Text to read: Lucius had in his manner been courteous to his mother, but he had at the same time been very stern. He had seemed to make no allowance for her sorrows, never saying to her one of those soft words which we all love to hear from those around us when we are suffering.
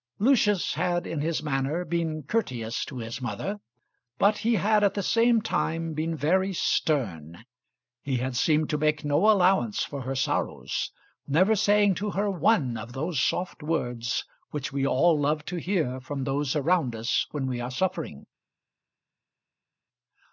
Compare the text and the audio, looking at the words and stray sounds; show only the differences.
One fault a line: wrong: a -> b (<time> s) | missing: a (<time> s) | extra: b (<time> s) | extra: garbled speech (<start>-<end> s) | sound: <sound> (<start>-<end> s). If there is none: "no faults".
no faults